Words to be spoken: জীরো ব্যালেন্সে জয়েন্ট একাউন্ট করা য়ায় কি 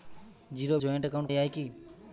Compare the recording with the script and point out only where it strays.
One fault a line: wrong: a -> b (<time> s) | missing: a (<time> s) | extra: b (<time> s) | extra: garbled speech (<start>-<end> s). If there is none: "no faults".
missing: ব্যালেন্সে (0.8 s)
missing: করা (1.3 s)